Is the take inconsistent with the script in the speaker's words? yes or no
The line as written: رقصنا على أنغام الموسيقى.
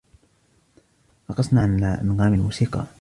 no